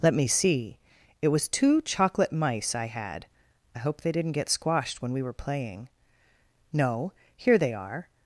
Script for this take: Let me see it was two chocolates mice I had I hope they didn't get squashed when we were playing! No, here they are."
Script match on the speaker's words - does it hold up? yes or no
no